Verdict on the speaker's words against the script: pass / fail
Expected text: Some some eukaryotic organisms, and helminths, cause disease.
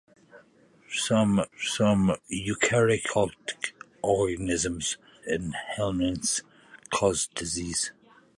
pass